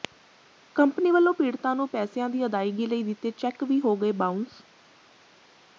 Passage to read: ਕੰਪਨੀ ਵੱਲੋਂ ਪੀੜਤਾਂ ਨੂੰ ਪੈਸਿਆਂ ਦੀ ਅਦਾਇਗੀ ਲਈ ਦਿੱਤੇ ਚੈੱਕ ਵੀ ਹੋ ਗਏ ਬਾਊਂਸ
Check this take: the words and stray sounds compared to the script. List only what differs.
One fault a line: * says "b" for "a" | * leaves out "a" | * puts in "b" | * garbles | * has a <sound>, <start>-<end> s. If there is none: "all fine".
all fine